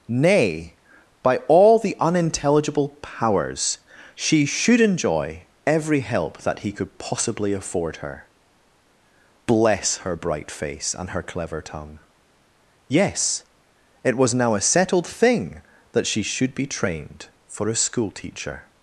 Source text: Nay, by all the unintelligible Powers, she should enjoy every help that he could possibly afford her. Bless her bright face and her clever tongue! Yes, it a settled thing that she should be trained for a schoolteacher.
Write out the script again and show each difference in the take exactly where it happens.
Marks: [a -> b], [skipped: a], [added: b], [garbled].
Nay, by all the unintelligible Powers, she should enjoy every help that he could possibly afford her. Bless her bright face and her clever tongue! Yes, it [added: was now] a settled thing that she should be trained for a schoolteacher.